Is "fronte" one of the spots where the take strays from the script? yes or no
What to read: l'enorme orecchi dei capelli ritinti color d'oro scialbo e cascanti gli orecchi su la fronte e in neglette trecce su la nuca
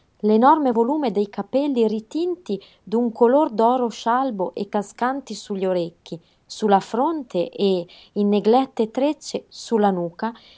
no